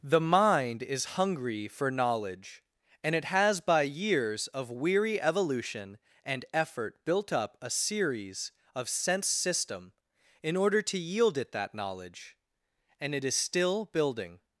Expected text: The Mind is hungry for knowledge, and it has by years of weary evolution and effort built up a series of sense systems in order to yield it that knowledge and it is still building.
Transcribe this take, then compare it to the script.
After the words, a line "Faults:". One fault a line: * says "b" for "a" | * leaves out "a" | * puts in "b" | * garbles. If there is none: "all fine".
The Mind is hungry for knowledge, and it has by years of weary evolution and effort built up a series of sense system in order to yield it that knowledge and it is still building.
Faults:
* says "system" for "systems"